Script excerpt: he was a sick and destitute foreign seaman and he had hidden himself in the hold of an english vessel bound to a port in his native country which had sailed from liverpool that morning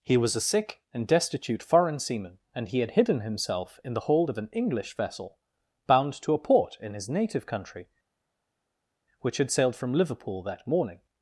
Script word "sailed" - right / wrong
right